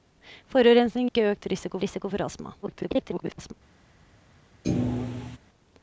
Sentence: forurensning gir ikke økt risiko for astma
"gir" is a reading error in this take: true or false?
true